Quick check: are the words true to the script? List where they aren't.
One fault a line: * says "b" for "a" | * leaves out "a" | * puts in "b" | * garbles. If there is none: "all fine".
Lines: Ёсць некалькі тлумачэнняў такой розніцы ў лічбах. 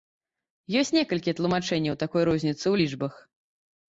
all fine